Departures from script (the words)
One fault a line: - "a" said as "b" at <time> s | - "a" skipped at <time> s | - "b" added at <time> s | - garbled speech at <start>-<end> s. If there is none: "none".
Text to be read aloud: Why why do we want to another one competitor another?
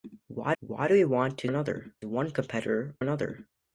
none